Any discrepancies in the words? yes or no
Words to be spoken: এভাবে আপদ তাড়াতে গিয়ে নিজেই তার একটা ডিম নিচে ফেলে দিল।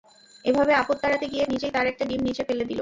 no